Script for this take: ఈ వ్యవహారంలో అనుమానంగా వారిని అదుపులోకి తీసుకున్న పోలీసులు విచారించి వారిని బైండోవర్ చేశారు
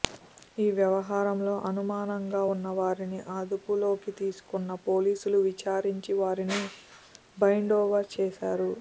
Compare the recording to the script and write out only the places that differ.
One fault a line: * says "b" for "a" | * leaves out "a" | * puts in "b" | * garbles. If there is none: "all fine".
* puts in "ఉన్న"